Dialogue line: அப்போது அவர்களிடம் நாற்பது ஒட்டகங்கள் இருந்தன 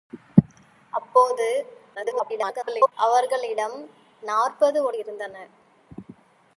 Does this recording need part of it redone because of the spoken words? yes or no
yes